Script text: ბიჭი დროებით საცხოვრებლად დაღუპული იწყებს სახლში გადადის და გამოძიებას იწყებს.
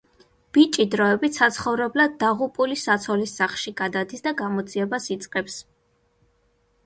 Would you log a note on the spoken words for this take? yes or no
yes